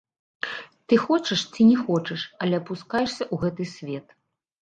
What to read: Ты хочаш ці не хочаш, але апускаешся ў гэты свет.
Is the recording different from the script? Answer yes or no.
no